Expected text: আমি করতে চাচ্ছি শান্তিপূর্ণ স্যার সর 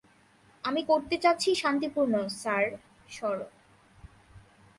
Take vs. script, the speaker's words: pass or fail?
pass